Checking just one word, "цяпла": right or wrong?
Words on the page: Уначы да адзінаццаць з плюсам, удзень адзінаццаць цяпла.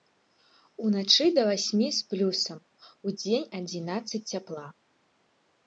right